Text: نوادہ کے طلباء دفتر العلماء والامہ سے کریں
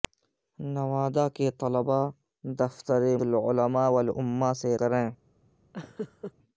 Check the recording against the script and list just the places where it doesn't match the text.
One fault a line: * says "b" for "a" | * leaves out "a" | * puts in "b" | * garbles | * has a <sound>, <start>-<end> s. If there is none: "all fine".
* has a laugh, 5.7-6.3 s